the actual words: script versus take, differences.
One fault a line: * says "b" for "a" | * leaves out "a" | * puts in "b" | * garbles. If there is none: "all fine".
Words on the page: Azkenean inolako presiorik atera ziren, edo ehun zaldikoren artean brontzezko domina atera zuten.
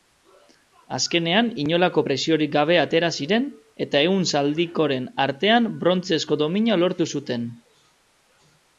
* puts in "gabe"
* says "eta" for "edo"
* says "lortu" for "atera"